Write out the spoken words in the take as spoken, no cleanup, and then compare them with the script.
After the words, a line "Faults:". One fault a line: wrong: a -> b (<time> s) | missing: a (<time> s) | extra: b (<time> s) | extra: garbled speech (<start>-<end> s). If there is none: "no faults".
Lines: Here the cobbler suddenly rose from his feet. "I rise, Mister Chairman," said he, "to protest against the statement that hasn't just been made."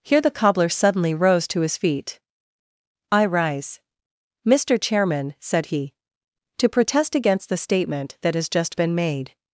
Here the cobbler suddenly rose to his feet. "I rise, Mister Chairman," said he, "to protest against the statement that has just been made."
Faults:
wrong: from -> to (1.5 s)
wrong: hasn't -> has (8.3 s)